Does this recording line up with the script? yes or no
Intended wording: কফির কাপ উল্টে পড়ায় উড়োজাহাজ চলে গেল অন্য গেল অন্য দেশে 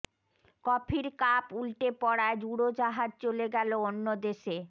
no